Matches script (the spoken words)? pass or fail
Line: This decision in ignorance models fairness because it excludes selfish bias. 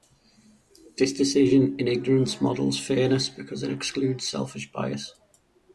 pass